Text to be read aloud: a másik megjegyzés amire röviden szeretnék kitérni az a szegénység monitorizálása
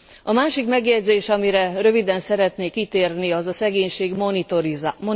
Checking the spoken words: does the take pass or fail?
pass